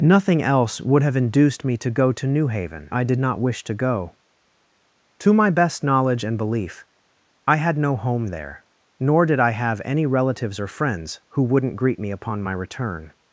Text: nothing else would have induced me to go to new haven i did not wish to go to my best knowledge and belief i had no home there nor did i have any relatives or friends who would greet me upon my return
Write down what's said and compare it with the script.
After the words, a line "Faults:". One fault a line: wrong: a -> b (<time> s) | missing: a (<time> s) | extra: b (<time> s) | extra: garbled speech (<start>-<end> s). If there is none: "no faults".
nothing else would have induced me to go to new haven i did not wish to go to my best knowledge and belief i had no home there nor did i have any relatives or friends who wouldn't greet me upon my return
Faults:
wrong: would -> wouldn't (11.4 s)